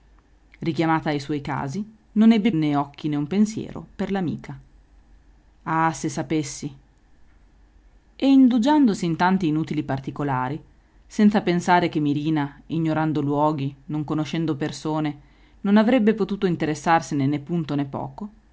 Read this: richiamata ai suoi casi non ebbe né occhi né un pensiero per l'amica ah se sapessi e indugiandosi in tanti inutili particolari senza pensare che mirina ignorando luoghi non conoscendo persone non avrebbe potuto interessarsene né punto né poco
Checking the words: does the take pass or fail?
pass